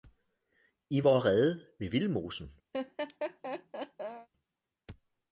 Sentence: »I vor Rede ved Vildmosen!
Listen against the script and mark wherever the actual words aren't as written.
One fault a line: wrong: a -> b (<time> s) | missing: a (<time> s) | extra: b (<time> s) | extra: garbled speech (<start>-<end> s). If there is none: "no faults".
no faults